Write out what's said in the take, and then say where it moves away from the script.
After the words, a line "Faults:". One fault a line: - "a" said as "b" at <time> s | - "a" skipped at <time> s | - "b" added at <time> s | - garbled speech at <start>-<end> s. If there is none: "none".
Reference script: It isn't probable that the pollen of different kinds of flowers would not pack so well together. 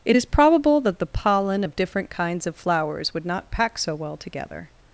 It is probable that the pollen of different kinds of flowers would not pack so well together.
Faults:
- "isn't" said as "is" at 0.1 s